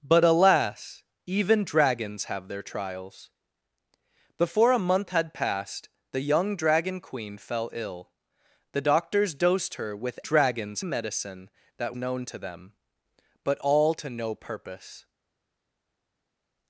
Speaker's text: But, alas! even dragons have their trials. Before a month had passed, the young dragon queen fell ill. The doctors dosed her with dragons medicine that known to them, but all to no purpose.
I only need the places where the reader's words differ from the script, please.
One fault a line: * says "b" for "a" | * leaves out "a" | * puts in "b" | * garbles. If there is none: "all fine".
all fine